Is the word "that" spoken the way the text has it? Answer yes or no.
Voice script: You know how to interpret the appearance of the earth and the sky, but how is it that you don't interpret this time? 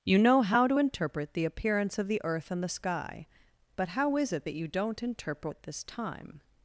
yes